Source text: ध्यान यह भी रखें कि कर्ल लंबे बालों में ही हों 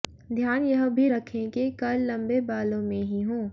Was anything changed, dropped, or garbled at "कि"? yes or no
no